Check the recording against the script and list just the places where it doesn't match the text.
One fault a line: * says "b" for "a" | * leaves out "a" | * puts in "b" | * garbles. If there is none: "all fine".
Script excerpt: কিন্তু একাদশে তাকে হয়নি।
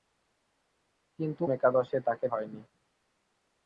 all fine